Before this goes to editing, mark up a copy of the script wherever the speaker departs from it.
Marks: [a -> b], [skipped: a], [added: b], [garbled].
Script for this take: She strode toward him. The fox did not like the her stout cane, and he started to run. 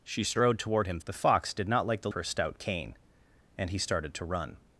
She strode toward him. The fox did not like the her stout cane, and he started to run.